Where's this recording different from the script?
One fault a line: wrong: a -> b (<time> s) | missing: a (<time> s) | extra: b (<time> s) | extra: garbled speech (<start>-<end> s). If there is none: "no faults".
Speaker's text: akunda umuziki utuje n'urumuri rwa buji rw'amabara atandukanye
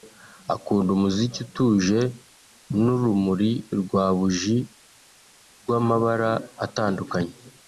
no faults